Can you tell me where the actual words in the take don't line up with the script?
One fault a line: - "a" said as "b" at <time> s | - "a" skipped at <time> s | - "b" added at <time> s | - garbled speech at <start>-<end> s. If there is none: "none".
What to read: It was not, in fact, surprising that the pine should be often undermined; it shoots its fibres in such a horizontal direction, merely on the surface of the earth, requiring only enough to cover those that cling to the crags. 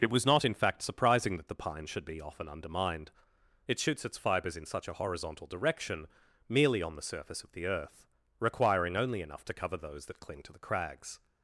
none